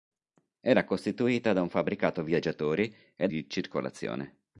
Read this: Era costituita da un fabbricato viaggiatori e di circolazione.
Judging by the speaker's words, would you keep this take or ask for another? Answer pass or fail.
pass